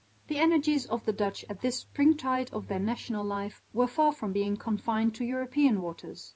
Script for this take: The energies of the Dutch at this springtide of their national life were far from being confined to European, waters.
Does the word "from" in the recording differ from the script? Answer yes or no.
no